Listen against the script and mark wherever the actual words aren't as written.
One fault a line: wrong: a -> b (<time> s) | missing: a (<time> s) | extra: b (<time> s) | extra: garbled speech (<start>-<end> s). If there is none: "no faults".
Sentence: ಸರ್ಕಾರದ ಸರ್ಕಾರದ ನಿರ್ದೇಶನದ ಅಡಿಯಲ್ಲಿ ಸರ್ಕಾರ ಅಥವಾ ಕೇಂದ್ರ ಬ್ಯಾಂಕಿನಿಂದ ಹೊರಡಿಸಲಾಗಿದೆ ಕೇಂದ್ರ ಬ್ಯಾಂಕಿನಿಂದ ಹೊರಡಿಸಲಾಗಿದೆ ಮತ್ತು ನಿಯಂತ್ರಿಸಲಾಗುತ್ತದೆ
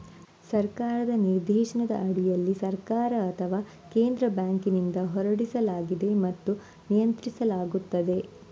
missing: ಸರ್ಕಾರದ (1.1 s)
missing: ಕೇಂದ್ರ ಬ್ಯಾಂಕಿನಿಂದ ಹೊರಡಿಸಲಾಗಿದೆ (6.1 s)